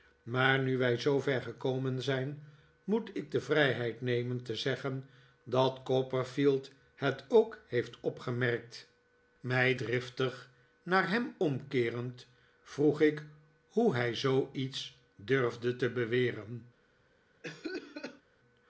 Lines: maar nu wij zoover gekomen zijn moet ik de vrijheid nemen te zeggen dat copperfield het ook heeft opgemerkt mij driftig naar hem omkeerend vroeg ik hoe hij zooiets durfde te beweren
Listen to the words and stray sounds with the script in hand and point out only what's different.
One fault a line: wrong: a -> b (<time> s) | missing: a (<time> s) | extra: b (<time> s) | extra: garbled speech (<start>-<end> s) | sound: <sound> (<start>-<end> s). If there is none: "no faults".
sound: cough (17.4-18.2 s)